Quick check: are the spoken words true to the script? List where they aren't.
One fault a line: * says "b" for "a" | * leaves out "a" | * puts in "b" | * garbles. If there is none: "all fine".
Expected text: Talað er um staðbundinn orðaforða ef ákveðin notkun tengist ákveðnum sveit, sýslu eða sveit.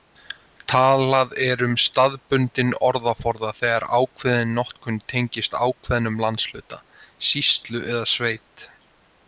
* says "þegar" for "ef"
* says "landshluta" for "sveit"